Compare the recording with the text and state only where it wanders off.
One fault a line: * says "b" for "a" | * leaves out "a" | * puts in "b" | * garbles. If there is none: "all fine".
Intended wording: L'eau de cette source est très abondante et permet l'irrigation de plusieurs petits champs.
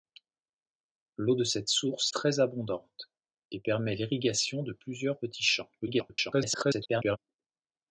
* leaves out "est"
* garbles